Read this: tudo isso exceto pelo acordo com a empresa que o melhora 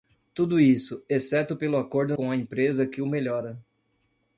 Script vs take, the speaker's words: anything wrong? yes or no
no